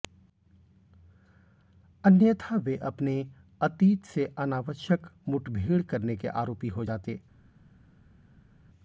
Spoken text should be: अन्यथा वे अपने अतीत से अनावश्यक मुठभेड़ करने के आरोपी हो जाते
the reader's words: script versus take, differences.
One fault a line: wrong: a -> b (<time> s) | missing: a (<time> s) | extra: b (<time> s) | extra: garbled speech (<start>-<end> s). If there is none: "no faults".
no faults